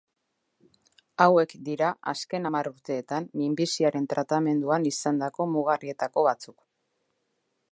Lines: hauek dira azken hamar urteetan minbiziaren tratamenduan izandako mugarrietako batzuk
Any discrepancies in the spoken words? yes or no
no